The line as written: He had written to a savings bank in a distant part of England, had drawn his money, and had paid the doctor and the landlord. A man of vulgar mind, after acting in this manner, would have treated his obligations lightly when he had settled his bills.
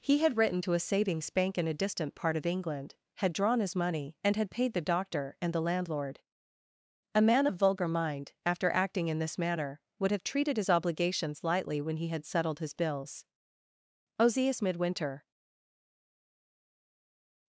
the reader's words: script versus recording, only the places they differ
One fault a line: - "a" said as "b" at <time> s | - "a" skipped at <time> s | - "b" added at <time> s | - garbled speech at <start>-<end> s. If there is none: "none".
- "Ozias Midwinter" added at 14.2 s